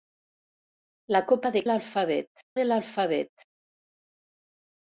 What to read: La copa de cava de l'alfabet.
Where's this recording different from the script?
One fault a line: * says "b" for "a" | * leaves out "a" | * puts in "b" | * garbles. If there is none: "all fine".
* says "l'alfabet" for "cava"